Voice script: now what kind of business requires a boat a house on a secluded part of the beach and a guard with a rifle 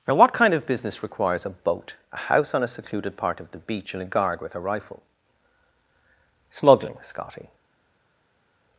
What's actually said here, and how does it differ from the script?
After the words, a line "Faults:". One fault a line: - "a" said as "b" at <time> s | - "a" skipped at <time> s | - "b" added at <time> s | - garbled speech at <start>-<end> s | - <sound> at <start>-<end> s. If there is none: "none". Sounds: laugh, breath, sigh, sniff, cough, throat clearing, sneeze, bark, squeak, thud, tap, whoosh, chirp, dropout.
now what kind of business requires a boat a house on a secluded part of the beach and a guard with a rifle smuggling scotty
Faults:
- "smuggling scotty" added at 6.5 s